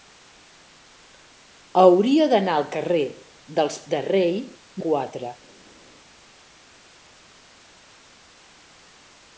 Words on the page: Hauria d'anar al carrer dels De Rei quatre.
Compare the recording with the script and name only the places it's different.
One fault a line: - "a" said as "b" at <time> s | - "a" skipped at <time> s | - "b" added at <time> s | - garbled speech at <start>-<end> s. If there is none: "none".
none